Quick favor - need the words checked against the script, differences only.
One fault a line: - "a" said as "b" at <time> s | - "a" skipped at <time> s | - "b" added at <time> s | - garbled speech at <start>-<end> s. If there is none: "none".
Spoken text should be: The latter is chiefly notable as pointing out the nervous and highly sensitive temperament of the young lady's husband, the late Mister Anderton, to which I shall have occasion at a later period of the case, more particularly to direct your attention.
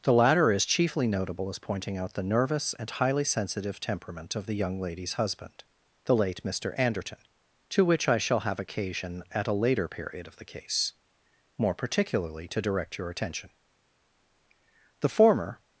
- "The former" added at 15.0 s